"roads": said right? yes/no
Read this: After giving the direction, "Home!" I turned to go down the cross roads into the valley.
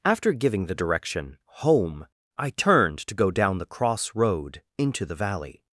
no